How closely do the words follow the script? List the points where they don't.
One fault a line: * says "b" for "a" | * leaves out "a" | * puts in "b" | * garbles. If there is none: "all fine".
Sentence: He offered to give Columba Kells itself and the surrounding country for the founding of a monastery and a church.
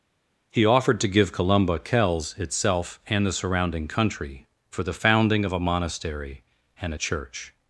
all fine